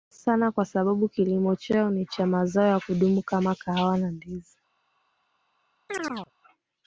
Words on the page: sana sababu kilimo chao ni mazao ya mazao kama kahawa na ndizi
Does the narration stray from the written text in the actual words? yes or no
yes